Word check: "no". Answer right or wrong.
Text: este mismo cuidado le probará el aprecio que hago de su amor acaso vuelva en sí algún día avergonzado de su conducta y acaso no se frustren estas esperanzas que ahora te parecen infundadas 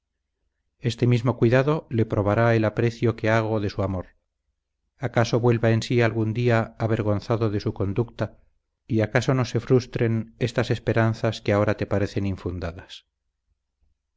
right